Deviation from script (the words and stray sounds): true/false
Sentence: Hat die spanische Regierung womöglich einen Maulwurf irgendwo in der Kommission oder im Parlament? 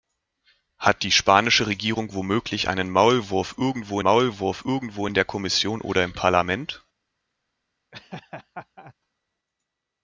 true